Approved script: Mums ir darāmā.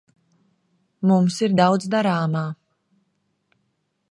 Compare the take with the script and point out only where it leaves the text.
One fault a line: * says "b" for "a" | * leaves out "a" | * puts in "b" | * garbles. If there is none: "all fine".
* puts in "daudz"